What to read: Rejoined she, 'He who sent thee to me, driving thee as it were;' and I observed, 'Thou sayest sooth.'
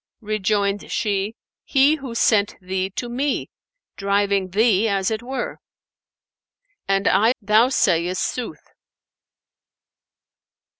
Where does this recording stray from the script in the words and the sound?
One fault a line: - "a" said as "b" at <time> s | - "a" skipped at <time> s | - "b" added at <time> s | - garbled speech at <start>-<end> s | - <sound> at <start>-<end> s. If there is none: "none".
- "observed" skipped at 7.3 s